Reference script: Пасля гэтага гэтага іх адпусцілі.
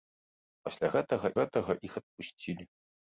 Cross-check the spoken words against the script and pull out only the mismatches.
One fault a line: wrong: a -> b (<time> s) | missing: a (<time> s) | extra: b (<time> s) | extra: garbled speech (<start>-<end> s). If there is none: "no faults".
no faults